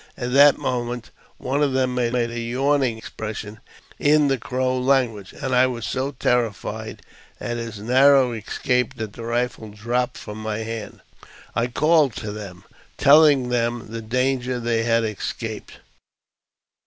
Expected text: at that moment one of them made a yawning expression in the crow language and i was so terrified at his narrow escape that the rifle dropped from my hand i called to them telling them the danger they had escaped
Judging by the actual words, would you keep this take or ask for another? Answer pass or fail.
fail